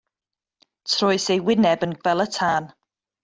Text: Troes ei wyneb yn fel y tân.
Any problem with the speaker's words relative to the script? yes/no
no